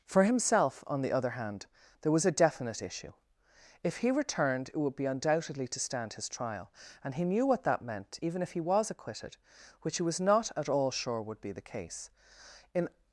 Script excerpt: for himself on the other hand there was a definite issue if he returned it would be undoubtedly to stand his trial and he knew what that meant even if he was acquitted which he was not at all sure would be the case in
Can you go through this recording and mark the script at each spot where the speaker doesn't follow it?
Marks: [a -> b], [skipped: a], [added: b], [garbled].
for himself on the other hand there was a definite issue if he returned it would be undoubtedly to stand his trial and he knew what that meant even if he was acquitted which he was not at all sure would be the case in